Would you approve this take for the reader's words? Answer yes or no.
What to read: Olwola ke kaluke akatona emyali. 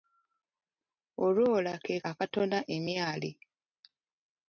no